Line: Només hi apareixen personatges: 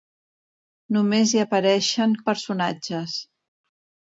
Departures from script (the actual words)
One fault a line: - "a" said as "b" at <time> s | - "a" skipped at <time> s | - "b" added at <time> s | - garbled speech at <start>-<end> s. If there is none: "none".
none